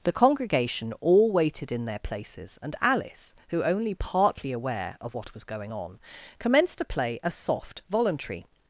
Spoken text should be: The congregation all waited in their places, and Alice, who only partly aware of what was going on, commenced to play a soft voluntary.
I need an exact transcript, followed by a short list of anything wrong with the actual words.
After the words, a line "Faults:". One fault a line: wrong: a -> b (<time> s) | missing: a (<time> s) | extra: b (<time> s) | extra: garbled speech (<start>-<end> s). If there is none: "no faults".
The congregation all waited in their places, and Alice, who only partly aware of what was going on, commenced to play a soft voluntary.
Faults:
no faults